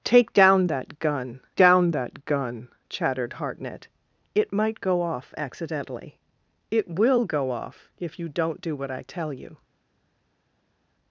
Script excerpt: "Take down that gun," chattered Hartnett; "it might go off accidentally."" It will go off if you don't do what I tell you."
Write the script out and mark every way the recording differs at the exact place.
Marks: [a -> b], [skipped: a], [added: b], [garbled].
"Take down that gun," [added: down that gun] chattered Hartnett; "it might go off accidentally."" It will go off if you don't do what I tell you."